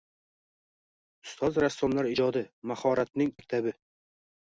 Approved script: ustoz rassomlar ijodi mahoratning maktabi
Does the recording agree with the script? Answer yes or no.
yes